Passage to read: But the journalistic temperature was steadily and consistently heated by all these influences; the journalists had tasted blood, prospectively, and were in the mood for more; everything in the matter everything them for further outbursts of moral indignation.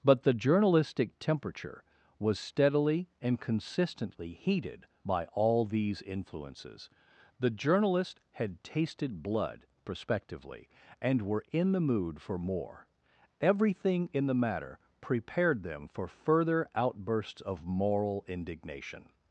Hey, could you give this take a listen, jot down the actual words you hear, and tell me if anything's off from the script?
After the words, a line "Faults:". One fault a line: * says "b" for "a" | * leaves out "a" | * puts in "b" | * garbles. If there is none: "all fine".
But the journalistic temperature was steadily and consistently heated by all these influences; the journalists had tasted blood, prospectively, and were in the mood for more; everything in the matter prepared them for further outbursts of moral indignation.
Faults:
* says "prepared" for "everything"